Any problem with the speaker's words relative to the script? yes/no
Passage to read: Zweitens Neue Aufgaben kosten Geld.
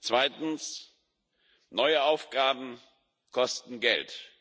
no